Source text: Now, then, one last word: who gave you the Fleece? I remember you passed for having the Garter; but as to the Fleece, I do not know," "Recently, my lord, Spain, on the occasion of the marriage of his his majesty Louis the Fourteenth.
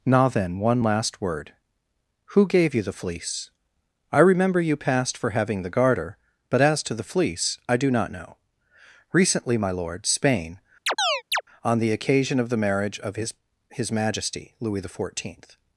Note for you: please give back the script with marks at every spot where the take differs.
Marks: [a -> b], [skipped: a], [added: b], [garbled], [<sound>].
Now, then, one last word: who gave you the Fleece? I remember you passed for having the Garter; but as to the Fleece, I do not know," "Recently, my lord, Spain, [chirp] on the occasion of the marriage of his his majesty Louis the Fourteenth.